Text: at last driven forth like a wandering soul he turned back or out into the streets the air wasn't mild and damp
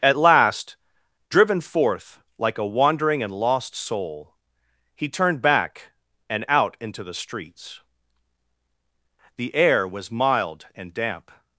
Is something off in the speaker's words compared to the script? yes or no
yes